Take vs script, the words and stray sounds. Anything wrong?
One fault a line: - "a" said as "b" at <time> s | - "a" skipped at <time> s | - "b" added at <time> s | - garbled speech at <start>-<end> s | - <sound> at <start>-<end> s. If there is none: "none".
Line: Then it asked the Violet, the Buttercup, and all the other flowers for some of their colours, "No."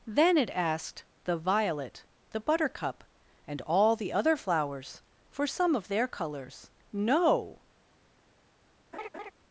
- laugh at 8.9-9.3 s